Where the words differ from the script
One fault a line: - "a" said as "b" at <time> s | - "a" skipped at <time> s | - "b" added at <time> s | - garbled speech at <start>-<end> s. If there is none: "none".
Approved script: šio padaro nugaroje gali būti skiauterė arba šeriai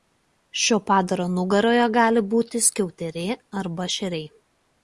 none